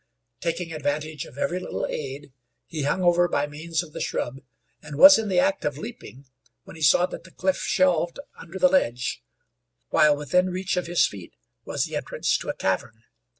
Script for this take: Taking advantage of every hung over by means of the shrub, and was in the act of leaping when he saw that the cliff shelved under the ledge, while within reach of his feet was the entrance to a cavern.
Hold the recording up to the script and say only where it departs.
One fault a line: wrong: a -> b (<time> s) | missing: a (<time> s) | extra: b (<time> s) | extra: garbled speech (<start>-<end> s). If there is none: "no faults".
extra: little aid he (1.6 s)